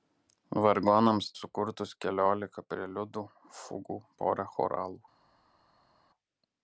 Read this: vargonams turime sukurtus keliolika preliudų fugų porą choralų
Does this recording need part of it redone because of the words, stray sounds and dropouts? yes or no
yes